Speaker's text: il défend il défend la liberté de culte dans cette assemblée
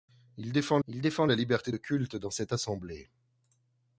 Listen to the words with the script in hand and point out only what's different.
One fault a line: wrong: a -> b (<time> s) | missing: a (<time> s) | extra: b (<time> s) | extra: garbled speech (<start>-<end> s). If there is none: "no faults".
no faults